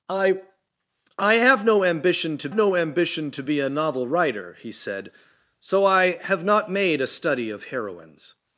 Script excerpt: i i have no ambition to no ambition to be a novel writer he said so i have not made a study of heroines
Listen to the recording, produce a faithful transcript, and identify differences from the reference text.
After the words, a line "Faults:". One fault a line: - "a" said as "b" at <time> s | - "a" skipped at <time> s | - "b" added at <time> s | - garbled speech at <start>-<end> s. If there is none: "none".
i i have no ambition to no ambition to be a novel writer he said so i have not made a study of heroines
Faults:
none